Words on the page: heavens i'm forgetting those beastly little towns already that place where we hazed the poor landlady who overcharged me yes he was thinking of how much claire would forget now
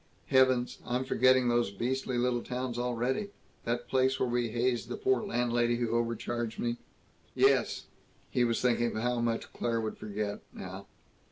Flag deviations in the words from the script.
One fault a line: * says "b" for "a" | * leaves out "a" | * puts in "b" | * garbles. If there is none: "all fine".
all fine